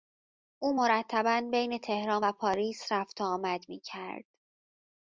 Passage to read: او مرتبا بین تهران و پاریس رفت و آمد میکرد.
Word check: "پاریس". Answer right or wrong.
right